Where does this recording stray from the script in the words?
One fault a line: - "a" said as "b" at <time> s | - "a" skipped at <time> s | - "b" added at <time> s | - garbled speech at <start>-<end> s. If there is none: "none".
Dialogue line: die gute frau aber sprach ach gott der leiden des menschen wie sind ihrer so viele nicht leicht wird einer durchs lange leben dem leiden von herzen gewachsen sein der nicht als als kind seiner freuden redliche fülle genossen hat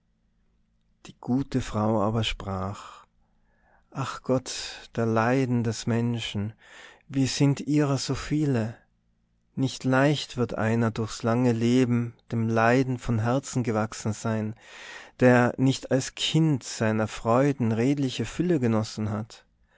- "als" skipped at 16.2 s